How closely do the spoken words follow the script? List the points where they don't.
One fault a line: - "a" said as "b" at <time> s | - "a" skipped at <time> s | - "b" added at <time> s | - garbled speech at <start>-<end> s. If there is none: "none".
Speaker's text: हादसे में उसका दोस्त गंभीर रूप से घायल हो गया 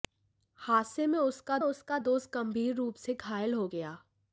- "उसका" added at 1.6 s